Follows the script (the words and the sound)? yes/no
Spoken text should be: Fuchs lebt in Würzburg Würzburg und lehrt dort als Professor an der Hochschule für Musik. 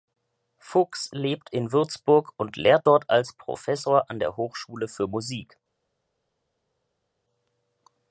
no